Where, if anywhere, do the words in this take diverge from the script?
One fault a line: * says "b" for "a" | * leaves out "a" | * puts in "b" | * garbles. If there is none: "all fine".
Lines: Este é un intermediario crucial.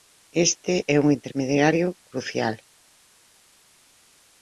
all fine